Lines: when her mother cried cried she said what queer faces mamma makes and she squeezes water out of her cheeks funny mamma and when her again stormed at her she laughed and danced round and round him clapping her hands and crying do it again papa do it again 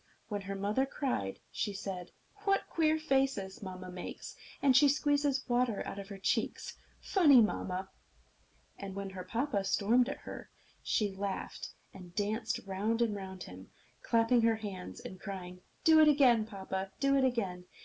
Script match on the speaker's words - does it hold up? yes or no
no